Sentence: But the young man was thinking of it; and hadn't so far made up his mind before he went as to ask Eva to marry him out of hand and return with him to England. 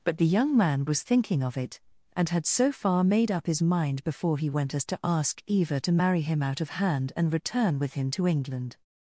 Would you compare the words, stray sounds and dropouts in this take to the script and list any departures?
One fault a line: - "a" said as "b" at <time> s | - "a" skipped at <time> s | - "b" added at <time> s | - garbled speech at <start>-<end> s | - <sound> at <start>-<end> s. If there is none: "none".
- "hadn't" said as "had" at 2.3 s